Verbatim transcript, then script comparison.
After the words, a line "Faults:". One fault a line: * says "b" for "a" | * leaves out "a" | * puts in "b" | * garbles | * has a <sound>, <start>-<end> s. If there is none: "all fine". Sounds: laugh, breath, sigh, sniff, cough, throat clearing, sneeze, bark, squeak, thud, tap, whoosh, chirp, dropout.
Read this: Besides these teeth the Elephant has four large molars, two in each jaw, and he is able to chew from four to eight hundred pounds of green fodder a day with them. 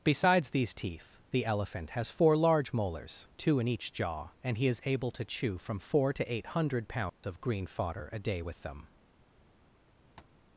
Besides these teeth the Elephant has four large molars, two in each jaw, and he is able to chew from four to eight hundred pounds of green fodder a day with them.
Faults:
* has a dropout, 7.1-7.2 s
* has a tap, 10.2-10.4 s